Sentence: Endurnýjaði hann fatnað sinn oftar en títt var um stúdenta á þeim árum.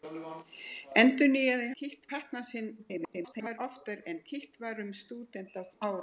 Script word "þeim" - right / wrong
wrong